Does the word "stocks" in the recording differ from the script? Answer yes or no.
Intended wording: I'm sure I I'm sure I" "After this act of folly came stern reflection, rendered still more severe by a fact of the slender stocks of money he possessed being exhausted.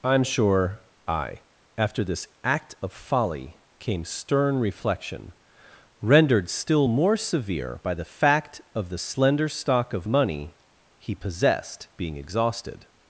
yes